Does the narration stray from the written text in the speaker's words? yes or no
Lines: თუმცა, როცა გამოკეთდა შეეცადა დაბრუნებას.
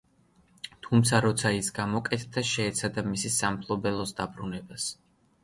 yes